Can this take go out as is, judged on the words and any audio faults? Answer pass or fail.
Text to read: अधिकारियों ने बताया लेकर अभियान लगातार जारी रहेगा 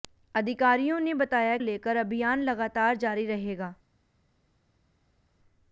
pass